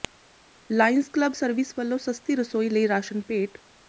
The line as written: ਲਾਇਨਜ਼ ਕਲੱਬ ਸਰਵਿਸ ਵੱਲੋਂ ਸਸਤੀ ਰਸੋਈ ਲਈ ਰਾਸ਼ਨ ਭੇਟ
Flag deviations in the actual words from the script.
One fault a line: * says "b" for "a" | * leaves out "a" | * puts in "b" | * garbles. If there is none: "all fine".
all fine